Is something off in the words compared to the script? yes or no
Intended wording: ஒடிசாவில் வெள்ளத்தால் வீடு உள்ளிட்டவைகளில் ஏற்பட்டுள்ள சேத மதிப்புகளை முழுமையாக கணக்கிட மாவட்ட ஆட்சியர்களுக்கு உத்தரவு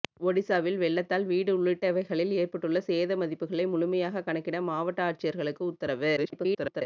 yes